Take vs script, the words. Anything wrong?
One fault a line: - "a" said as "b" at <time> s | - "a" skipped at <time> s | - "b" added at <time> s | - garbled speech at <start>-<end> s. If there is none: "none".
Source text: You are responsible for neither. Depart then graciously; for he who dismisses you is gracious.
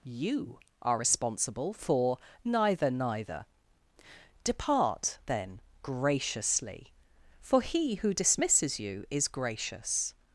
- "neither" added at 2.9 s